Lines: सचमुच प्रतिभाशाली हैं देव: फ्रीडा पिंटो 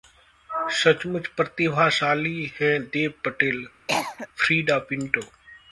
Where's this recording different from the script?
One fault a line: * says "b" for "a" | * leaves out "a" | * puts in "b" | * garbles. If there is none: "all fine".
* puts in "पटेल"